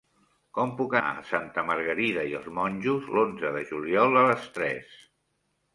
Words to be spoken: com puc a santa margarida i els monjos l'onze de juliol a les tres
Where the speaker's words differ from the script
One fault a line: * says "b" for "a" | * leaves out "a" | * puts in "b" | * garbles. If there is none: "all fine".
all fine